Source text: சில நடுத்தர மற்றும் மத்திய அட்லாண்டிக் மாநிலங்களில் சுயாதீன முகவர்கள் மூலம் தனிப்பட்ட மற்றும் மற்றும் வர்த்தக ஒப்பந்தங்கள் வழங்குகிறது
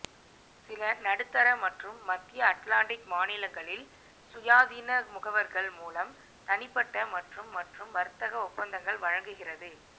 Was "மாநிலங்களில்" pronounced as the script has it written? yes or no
yes